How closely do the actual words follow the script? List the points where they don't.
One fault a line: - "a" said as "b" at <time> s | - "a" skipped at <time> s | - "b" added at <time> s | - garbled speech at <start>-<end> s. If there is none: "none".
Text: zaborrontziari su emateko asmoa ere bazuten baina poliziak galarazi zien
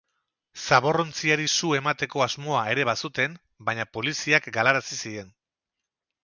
none